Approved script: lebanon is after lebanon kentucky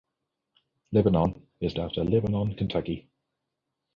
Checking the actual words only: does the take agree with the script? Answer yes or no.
yes